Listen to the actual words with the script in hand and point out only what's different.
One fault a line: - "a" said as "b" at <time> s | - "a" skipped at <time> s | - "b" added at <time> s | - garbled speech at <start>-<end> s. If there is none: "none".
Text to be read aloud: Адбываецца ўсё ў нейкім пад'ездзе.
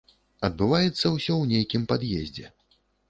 none